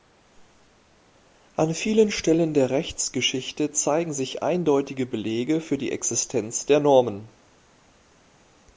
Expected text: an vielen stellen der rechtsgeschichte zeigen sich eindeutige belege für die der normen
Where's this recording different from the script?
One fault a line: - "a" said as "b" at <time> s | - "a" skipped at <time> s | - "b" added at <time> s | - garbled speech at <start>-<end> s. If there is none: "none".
- "existenz" added at 5.9 s